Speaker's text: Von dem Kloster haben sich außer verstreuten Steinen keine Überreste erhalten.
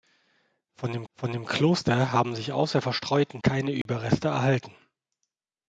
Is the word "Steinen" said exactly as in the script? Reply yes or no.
no